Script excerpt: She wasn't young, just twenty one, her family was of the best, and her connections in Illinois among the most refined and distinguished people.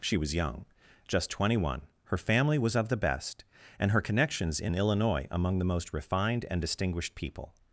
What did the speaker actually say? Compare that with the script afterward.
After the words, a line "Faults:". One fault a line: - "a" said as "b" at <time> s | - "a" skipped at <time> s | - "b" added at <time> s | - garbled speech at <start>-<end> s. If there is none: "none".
She was young, just twenty one, her family was of the best, and her connections in Illinois among the most refined and distinguished people.
Faults:
- "wasn't" said as "was" at 0.2 s